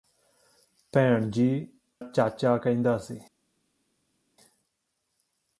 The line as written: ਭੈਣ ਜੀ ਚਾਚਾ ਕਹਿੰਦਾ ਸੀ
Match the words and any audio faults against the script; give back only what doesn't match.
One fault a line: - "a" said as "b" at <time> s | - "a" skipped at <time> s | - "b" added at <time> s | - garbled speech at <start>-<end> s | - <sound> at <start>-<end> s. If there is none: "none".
none